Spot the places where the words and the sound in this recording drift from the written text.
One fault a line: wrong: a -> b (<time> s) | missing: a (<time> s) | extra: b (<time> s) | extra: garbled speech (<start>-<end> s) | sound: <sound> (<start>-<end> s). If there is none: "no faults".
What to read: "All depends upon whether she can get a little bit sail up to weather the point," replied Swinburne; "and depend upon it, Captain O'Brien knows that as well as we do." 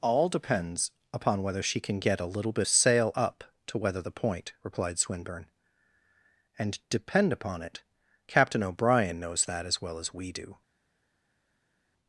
no faults